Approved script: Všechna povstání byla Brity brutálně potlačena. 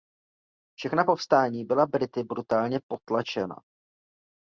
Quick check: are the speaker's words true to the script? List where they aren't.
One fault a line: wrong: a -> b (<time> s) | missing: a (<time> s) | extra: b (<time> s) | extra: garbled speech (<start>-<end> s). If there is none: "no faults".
no faults